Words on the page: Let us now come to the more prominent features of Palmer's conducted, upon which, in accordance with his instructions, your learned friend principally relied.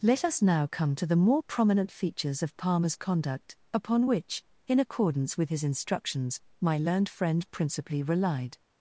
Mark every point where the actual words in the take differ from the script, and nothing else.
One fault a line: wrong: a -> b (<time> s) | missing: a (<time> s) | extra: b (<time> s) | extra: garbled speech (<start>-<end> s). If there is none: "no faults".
wrong: conducted -> conduct (3.0 s)
wrong: your -> my (6.6 s)